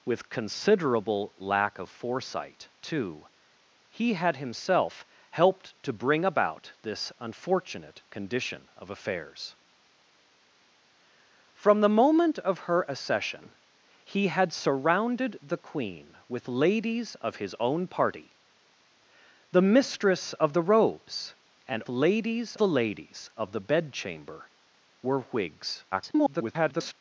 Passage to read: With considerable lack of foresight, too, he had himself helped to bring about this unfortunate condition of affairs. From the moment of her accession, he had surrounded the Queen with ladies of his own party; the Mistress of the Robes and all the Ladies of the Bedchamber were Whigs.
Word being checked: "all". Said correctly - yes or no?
no